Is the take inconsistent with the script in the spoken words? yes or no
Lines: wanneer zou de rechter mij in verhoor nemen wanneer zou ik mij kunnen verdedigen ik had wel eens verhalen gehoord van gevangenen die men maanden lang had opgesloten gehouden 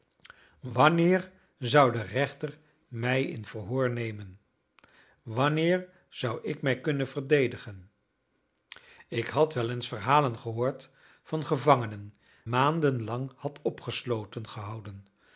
yes